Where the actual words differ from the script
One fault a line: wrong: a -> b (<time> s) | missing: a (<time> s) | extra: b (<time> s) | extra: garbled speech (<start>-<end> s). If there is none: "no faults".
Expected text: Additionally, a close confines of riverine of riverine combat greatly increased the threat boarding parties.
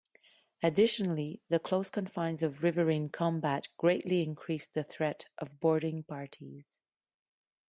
wrong: a -> the (1.5 s)
missing: of riverine (3.1 s)
extra: of (5.4 s)